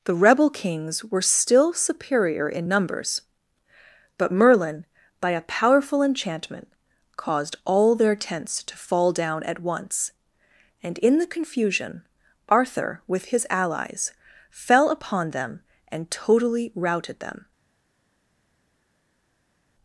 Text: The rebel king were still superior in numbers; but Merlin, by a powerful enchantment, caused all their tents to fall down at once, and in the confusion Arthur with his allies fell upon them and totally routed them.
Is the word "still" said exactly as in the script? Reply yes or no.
yes